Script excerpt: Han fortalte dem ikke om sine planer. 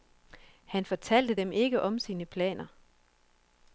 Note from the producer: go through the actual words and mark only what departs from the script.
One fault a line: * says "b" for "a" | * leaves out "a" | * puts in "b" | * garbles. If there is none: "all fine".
all fine